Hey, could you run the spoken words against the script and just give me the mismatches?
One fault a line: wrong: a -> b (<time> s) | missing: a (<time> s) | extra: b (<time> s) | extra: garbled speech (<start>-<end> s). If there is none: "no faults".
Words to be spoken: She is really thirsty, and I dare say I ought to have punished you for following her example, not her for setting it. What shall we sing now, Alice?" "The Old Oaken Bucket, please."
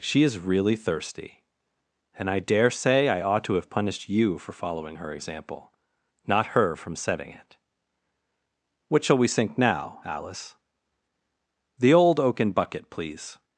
wrong: for -> from (6.8 s)
wrong: sing -> sink (9.3 s)